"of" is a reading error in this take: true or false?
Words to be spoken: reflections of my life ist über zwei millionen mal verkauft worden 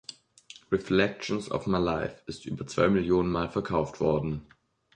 false